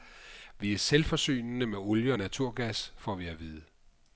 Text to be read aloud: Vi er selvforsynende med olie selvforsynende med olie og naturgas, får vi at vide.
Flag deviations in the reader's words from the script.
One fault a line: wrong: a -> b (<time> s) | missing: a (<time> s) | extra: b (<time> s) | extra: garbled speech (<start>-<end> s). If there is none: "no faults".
missing: selvforsynende med olie (2.1 s)